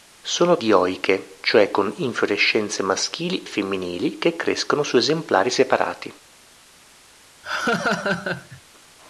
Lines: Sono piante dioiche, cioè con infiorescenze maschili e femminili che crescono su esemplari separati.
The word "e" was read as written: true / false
false